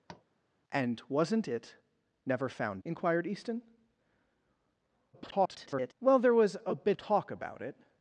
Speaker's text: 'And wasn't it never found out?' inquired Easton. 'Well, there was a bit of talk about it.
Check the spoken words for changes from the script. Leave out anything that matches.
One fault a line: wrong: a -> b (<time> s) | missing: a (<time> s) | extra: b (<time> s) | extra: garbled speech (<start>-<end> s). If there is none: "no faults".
missing: out (2.8 s)
extra: garbled speech (5.1-5.9 s)
missing: of (7.0 s)